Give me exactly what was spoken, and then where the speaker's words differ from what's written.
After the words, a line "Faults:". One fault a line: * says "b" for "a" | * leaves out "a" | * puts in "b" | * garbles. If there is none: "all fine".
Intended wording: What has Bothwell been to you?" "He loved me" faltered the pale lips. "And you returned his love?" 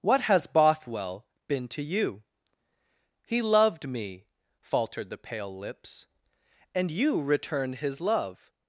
What has Bothwell been to you?" "He loved me" faltered the pale lips. "And you returned his love?"
Faults:
all fine